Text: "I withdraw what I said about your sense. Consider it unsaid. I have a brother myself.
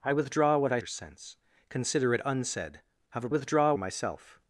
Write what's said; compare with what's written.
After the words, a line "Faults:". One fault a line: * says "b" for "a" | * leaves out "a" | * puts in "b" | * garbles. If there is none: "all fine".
"I withdraw what I your sense. Consider it unsaid. have a withdraw myself.
Faults:
* leaves out "said about"
* leaves out "I"
* says "withdraw" for "brother"